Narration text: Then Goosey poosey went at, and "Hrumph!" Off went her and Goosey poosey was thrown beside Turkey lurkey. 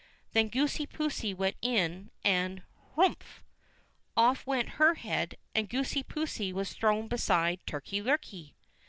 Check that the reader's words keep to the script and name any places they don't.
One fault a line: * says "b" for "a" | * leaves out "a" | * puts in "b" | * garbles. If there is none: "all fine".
* says "in" for "at"
* puts in "head"